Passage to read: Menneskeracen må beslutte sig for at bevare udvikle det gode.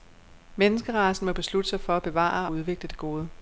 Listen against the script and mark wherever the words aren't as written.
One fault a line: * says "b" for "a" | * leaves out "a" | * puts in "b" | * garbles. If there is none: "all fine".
all fine